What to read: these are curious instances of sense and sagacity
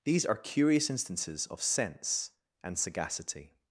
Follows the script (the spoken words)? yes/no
yes